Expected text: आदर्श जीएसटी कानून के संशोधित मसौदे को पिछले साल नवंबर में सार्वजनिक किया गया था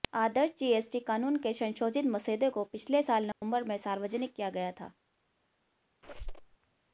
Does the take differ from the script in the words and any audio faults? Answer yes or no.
yes